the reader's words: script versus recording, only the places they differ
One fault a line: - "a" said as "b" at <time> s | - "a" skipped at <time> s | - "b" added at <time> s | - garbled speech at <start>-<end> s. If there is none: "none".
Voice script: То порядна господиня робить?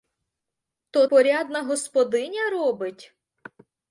none